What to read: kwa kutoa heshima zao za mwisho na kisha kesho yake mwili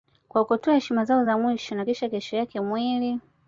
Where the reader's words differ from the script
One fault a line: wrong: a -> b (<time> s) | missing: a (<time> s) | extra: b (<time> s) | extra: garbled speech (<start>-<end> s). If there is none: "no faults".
no faults